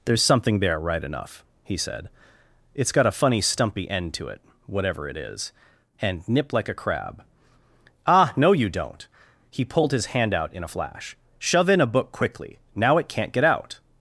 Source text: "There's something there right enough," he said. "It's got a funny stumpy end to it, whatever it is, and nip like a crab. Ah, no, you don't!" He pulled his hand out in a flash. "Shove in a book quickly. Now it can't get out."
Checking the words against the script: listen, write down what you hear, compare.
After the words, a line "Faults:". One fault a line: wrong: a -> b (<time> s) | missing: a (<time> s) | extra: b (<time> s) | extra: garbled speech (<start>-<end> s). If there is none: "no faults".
"There's something there right enough," he said. "It's got a funny stumpy end to it, whatever it is, and nip like a crab. Ah, no, you don't!" He pulled his hand out in a flash. "Shove in a book quickly. Now it can't get out."
Faults:
no faults